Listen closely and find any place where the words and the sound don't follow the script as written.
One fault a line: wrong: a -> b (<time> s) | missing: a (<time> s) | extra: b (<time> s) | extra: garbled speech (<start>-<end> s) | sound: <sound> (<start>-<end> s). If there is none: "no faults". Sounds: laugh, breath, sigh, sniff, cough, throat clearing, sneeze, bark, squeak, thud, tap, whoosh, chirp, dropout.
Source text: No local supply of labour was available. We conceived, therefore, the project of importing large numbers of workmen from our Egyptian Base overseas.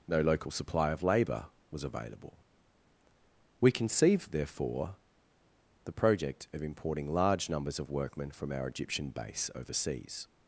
no faults